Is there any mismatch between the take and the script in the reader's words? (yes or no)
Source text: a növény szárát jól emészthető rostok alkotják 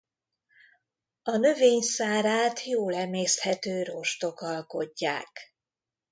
no